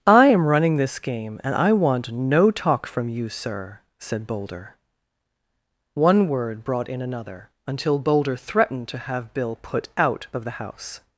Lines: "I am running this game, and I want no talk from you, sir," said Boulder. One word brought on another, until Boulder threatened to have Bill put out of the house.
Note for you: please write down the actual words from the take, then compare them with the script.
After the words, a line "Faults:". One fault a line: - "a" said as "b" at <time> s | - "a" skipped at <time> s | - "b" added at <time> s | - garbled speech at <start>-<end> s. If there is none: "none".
"I am running this game, and I want no talk from you, sir," said Boulder. One word brought in another, until Boulder threatened to have Bill put out of the house.
Faults:
- "on" said as "in" at 6.9 s